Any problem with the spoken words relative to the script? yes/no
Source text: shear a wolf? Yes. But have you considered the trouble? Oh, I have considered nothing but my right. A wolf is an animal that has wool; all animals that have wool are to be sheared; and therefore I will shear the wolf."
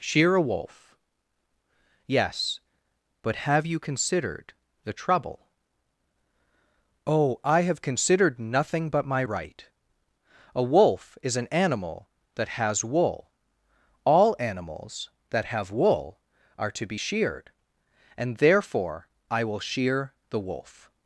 no